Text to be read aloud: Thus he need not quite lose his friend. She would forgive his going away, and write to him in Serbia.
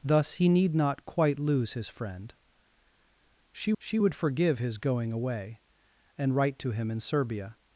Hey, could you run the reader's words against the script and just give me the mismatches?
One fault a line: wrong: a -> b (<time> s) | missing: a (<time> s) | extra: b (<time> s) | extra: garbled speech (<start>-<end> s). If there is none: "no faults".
extra: she (3.8 s)